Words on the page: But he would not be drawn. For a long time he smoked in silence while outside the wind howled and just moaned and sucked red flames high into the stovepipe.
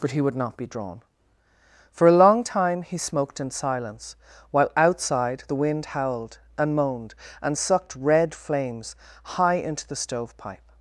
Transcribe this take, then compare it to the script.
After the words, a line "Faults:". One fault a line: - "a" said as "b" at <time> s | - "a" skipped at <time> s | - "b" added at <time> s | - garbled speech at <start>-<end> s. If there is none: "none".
But he would not be drawn. For a long time he smoked in silence while outside the wind howled and moaned and sucked red flames high into the stovepipe.
Faults:
- "just" skipped at 6.7 s